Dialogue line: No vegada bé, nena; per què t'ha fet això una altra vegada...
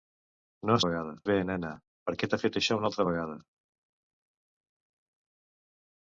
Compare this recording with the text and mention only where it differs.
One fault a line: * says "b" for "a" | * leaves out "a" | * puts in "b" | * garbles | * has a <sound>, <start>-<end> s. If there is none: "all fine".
all fine